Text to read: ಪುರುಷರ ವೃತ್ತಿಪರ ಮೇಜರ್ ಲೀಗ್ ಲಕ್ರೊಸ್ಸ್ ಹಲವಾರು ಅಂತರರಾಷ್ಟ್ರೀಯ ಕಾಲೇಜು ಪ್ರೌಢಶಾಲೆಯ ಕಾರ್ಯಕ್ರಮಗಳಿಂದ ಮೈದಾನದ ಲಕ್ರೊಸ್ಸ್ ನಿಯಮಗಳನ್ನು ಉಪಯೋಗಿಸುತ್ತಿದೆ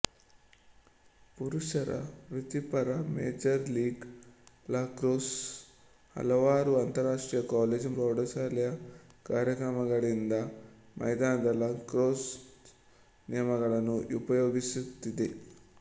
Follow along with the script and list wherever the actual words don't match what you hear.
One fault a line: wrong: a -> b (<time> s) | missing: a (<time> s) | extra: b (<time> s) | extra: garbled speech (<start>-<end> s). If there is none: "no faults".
no faults